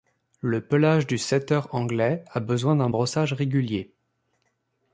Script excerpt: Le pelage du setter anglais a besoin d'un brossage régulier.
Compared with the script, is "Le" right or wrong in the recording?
right